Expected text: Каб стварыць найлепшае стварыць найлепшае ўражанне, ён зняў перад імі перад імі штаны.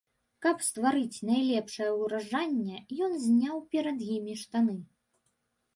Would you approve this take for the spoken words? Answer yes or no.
no